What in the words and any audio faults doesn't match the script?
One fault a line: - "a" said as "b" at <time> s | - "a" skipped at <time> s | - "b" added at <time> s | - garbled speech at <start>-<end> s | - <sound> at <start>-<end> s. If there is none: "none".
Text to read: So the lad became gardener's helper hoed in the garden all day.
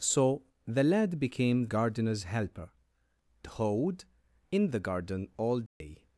- dropout at 5.7-5.8 s